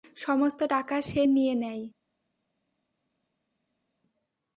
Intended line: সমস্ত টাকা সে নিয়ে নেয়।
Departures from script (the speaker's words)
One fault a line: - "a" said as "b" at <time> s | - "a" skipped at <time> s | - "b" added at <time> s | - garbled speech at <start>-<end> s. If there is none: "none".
none